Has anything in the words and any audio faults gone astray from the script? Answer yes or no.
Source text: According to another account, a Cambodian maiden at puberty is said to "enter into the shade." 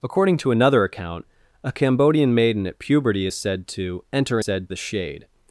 yes